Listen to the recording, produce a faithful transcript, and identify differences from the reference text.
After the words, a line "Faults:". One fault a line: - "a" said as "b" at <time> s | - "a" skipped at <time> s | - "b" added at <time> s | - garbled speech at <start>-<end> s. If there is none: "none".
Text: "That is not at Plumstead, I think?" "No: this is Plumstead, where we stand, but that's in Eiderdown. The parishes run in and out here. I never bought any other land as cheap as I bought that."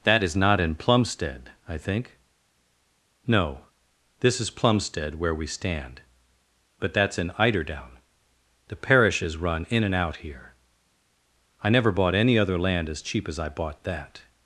"That is not in Plumstead, I think?" "No: this is Plumstead, where we stand, but that's in Eiderdown. The parishes run in and out here. I never bought any other land as cheap as I bought that."
Faults:
- "at" said as "in" at 0.6 s